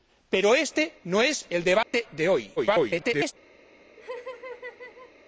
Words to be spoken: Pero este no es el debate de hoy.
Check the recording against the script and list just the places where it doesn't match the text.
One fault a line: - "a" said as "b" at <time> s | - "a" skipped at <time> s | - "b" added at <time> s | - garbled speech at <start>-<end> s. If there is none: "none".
- garbled speech at 2.6-3.3 s